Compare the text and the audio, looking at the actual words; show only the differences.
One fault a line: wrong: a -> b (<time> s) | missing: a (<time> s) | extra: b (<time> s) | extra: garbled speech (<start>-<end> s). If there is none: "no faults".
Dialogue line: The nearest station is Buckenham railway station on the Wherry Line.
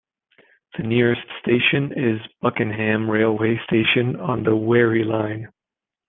no faults